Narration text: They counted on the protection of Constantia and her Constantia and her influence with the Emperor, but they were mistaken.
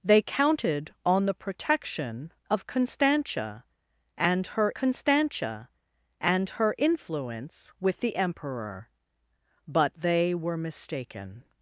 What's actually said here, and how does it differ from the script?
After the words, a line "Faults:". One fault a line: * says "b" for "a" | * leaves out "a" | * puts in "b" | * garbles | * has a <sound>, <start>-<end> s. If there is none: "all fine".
They counted on the protection of Constantia and her Constantia and her influence with the Emperor, but they were mistaken.
Faults:
all fine